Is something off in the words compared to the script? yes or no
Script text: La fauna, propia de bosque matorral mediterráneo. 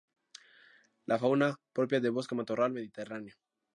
no